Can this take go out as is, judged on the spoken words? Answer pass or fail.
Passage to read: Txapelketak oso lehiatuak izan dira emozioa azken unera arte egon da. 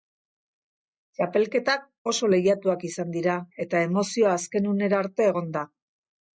fail